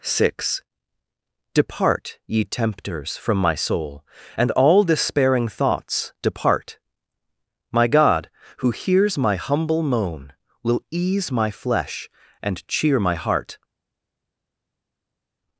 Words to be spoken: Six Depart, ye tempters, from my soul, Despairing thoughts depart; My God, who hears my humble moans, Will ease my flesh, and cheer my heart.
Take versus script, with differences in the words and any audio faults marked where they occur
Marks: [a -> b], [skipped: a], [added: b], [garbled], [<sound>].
Six Depart, ye tempters, from my soul, [added: And all] Despairing thoughts depart; My God, who hears my humble [moans, -> moan] Will ease my flesh, and cheer my heart.